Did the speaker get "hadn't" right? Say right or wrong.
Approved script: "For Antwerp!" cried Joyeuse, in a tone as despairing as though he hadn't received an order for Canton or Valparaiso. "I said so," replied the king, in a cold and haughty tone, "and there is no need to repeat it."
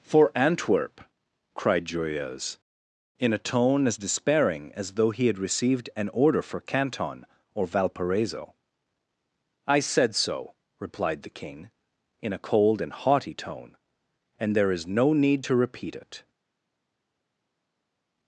wrong